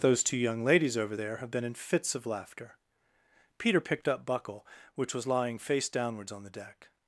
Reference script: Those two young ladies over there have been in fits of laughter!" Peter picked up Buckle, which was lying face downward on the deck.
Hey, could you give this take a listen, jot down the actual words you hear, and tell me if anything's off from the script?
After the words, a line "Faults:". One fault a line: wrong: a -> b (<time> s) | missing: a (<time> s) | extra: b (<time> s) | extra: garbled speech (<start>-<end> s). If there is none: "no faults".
Those two young ladies over there have been in fits of laughter!" Peter picked up Buckle, which was lying face downwards on the deck.
Faults:
wrong: downward -> downwards (5.9 s)